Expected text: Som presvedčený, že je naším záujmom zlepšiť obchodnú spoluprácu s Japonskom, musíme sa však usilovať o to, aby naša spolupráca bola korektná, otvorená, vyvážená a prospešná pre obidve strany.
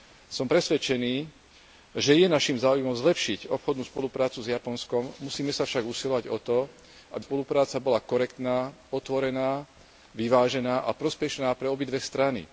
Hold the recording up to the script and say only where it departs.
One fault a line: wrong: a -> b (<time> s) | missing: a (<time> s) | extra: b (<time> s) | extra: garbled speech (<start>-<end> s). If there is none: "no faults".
missing: naša (7.2 s)